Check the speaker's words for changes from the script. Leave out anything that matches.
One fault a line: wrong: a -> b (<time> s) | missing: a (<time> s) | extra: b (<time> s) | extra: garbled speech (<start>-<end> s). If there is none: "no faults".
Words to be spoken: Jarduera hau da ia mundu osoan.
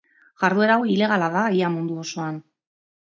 extra: ilegala (0.9 s)